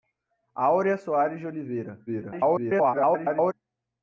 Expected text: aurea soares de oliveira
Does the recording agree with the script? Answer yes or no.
no